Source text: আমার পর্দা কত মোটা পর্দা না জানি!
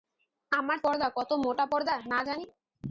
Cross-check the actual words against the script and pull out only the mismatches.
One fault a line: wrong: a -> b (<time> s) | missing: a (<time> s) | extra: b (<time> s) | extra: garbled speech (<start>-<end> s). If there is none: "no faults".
no faults